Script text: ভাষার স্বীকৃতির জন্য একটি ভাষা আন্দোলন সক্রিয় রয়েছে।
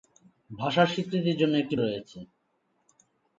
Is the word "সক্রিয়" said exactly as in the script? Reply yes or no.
no